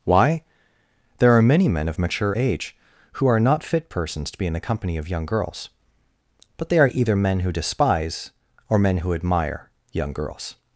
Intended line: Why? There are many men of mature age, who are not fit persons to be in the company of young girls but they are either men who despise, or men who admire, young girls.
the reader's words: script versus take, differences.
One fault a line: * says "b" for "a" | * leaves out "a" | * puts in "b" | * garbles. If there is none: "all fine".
all fine